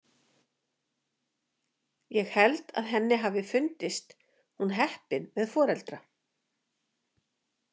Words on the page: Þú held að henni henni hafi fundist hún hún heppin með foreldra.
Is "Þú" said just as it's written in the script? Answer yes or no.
no